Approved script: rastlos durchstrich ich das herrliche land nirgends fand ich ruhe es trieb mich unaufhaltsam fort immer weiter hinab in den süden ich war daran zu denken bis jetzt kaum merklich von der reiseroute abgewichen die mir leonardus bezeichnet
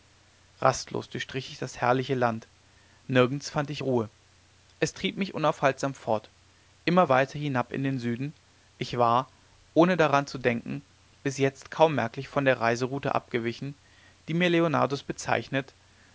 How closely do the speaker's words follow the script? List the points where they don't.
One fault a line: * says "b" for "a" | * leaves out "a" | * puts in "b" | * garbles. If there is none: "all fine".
* puts in "ohne"